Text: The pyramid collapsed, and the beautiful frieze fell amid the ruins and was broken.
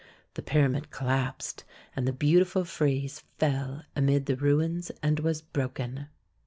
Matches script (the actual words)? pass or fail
pass